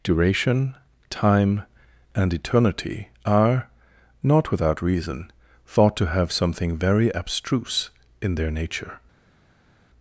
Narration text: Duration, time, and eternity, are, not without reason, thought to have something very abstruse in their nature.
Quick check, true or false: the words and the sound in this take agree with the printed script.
true